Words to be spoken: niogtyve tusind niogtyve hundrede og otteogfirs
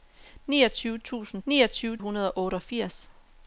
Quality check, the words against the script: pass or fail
pass